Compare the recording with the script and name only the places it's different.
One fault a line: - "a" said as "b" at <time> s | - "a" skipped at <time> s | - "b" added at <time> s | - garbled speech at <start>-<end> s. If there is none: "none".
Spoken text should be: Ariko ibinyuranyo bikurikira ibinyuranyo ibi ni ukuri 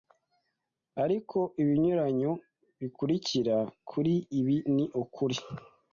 - "ibinyuranyo" said as "kuri" at 3.9 s